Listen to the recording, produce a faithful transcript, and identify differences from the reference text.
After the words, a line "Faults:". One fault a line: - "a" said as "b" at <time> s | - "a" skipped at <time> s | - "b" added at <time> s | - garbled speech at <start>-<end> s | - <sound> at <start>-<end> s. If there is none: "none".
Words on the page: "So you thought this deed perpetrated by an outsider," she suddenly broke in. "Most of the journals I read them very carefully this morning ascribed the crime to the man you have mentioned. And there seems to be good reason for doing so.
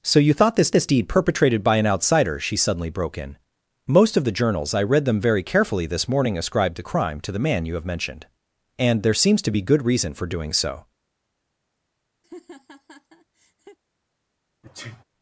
"So you thought this this deed perpetrated by an outsider," she suddenly broke in. "Most of the journals I read them very carefully this morning ascribed the crime to the man you have mentioned. And there seems to be good reason for doing so.
Faults:
- "this" added at 0.7 s
- laugh at 12.2-13.8 s
- sneeze at 14.6-15.0 s